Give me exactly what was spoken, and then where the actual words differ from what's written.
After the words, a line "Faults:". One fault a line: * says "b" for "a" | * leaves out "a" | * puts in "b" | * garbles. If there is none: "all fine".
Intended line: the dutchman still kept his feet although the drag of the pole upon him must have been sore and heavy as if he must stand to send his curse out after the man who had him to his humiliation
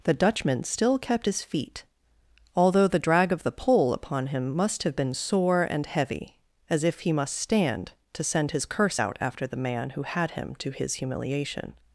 the dutchman still kept his feet although the drag of the pole upon him must have been sore and heavy as if he must stand to send his curse out after the man who had him to his humiliation
Faults:
all fine